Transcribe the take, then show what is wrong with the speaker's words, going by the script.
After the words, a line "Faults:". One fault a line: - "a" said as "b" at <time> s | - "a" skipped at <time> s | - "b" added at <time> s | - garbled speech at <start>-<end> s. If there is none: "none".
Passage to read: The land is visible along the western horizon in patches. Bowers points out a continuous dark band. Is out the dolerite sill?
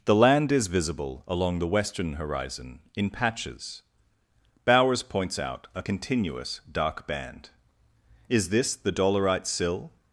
The land is visible along the western horizon in patches. Bowers points out a continuous dark band. Is this the dolerite sill?
Faults:
- "out" said as "this" at 8.5 s